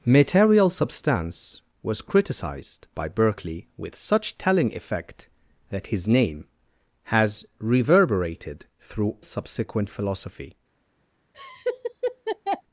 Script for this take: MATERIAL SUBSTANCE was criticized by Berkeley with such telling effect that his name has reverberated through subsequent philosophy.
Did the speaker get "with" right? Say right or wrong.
right